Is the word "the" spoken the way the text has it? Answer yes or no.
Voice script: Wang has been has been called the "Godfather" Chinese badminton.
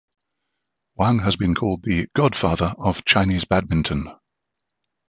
yes